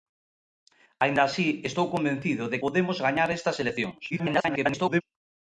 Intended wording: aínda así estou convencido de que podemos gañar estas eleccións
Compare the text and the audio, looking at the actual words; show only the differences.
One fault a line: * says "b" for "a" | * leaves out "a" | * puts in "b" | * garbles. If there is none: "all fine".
* leaves out "que"
* garbles